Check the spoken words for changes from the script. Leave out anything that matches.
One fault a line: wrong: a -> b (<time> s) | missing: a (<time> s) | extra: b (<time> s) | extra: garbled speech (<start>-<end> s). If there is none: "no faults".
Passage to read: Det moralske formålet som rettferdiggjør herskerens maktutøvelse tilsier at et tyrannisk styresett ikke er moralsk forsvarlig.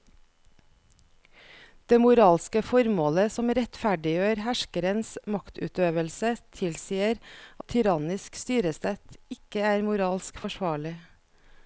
missing: at (7.2 s)